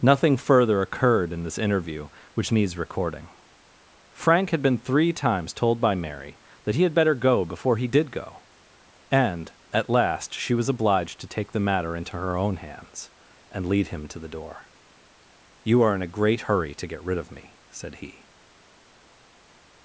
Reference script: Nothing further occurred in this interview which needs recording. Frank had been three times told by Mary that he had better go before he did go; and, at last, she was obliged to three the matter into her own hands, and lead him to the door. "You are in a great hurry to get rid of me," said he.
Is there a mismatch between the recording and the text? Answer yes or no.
yes